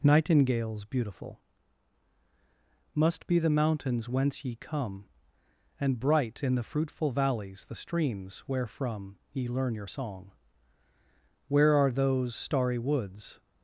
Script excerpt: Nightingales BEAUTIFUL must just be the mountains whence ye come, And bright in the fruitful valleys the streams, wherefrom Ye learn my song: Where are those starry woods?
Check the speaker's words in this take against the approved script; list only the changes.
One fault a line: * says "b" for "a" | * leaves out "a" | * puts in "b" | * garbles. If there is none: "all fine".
* leaves out "just"
* says "your" for "my"